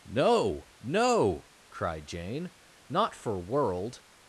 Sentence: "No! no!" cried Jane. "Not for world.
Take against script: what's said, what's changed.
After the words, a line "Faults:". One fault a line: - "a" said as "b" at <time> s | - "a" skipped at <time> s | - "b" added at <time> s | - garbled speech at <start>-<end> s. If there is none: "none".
"No! no!" cried Jane. "Not for world.
Faults:
none